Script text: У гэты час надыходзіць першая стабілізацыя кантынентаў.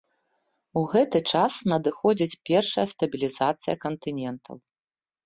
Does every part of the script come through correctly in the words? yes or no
yes